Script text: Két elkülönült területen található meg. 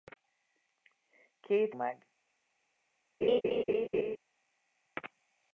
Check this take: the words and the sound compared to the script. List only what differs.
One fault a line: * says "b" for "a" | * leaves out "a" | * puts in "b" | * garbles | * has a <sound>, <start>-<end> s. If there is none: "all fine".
* leaves out "elkülönült területen található"
* has a laugh, 3.2-4.2 s